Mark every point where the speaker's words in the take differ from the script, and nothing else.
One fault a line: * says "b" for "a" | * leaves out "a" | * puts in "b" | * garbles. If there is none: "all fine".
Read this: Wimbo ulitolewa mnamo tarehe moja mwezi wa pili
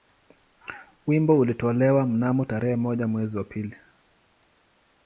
all fine